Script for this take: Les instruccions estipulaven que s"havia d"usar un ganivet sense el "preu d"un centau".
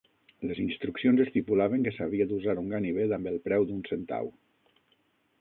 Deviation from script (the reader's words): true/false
true